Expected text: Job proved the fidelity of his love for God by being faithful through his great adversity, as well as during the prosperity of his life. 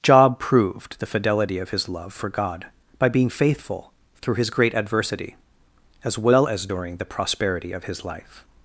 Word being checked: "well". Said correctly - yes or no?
yes